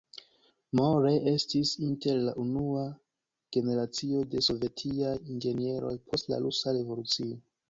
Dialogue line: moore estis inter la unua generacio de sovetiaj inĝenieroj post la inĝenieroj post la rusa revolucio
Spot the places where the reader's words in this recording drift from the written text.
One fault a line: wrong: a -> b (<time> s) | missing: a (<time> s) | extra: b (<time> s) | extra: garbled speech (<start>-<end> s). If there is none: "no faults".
missing: inĝenieroj post la (6.5 s)